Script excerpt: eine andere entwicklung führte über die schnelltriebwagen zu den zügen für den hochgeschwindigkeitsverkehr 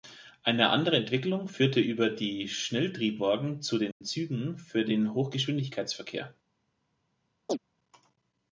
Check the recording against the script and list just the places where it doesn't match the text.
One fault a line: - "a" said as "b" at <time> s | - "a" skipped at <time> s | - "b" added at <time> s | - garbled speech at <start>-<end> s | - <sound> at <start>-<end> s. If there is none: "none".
- dropout at 3.9-4.0 s
- chirp at 7.5-7.6 s